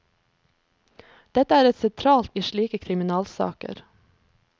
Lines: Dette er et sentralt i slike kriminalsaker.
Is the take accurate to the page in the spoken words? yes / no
yes